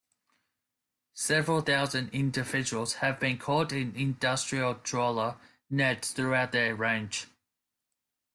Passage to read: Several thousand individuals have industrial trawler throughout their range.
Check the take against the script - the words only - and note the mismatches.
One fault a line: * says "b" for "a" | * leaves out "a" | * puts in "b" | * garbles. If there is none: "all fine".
* puts in "been caught in"
* puts in "nets"